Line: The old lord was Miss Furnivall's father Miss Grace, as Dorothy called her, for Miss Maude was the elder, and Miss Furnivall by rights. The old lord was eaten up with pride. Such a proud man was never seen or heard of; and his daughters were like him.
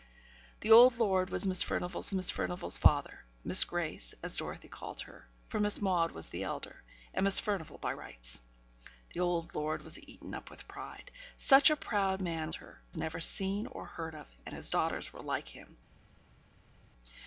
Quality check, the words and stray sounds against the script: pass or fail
fail